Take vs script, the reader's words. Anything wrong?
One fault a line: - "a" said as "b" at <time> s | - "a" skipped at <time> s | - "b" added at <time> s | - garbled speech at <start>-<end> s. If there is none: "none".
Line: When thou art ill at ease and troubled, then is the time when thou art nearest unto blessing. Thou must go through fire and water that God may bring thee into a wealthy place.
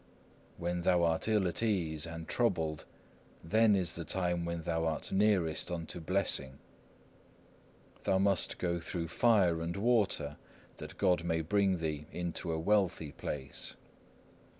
none